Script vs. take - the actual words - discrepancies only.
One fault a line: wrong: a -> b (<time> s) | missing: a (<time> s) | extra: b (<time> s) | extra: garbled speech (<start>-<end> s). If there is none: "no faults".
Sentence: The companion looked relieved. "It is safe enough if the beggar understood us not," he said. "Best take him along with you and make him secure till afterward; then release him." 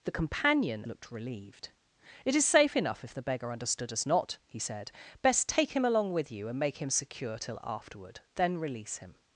no faults